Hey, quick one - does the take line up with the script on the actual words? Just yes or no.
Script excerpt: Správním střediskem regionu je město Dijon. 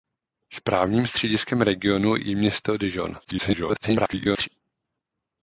no